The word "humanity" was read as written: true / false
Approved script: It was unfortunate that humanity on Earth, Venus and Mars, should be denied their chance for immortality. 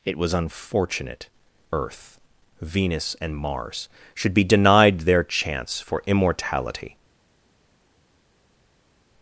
false